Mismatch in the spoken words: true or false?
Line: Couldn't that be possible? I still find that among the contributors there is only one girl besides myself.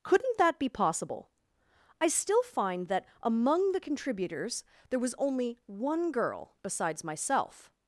true